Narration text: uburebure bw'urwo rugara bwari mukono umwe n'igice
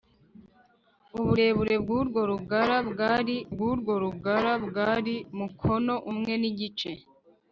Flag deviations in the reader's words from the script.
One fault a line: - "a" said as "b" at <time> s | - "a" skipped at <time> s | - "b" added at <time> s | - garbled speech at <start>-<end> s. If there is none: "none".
- "bw'urwo rugara bwari" added at 3.5 s